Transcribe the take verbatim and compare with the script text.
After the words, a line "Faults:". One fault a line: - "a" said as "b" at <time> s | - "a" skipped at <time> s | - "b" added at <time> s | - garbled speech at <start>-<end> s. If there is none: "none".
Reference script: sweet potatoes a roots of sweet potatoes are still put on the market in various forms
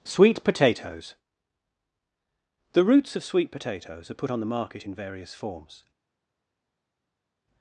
sweet potatoes the roots of sweet potatoes are put on the market in various forms
Faults:
- "a" said as "the" at 2.7 s
- "still" skipped at 4.2 s